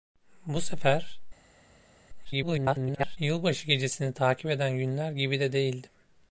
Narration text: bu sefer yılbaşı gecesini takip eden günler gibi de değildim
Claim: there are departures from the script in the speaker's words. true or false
true